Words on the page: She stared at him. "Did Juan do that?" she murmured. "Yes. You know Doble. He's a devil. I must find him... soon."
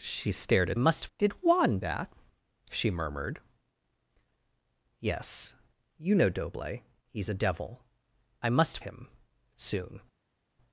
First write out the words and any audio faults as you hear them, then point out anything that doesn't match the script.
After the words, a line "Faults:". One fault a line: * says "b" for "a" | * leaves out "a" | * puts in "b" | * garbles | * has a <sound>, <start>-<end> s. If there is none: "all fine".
She stared at must. "Did Juan that?" she murmured. "Yes. You know Doble. He's a devil. I must him... soon."
Faults:
* says "must" for "him"
* leaves out "do"
* leaves out "find"